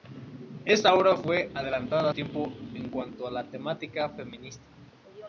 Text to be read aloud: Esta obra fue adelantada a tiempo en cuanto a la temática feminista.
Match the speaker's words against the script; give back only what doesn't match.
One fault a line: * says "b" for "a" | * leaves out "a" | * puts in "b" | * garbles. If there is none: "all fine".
all fine